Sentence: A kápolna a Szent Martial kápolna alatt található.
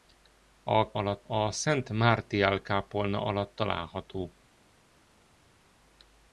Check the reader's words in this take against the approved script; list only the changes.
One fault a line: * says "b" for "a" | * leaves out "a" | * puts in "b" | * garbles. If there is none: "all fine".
* says "alatt" for "kápolna"